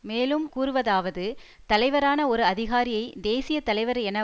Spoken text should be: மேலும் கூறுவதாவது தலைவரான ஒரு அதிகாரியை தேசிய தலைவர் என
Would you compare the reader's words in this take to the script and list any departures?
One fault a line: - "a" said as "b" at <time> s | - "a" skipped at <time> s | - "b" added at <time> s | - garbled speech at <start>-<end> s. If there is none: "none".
none